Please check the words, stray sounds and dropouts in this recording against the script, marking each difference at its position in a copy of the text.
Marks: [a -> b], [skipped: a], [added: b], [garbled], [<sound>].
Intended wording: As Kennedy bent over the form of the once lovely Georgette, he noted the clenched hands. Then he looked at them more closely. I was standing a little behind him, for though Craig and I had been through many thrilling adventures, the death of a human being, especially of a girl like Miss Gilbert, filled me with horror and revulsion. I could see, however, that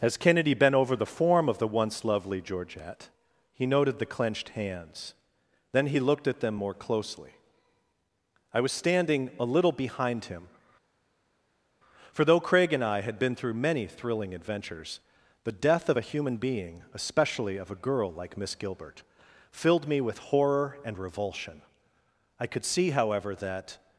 As Kennedy bent over the form of the once lovely Georgette, he noted the clenched hands. Then he looked at them more closely. I was standing a little behind him, for though Craig and I had been through many thrilling adventures, the death of a human being, especially of a girl like Miss Gilbert, filled me with horror and revulsion. I could see, however, that